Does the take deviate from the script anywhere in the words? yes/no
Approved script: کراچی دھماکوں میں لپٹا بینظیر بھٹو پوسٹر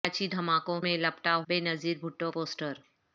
no